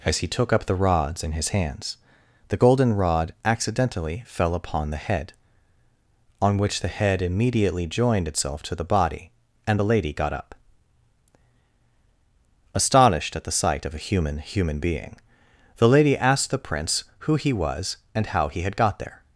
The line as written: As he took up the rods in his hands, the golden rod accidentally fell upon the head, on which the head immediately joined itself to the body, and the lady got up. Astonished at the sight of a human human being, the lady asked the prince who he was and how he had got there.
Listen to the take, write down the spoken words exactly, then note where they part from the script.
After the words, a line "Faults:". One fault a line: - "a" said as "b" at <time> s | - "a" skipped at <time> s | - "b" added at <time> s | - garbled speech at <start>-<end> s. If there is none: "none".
As he took up the rods in his hands, the golden rod accidentally fell upon the head, on which the head immediately joined itself to the body, and the lady got up. Astonished at the sight of a human human being, the lady asked the prince who he was and how he had got there.
Faults:
none